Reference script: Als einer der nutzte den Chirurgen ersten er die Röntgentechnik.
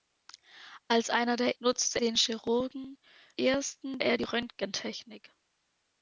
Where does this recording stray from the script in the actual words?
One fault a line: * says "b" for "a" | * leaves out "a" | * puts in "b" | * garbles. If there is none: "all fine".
all fine